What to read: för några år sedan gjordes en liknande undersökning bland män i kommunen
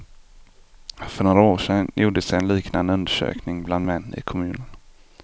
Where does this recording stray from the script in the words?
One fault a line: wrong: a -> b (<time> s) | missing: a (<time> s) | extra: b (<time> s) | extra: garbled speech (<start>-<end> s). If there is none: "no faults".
no faults